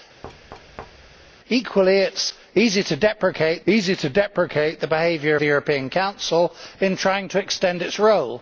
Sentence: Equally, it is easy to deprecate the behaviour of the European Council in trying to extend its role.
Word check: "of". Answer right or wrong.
wrong